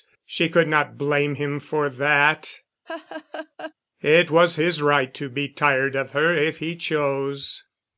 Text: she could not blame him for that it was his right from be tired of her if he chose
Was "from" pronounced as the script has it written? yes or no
no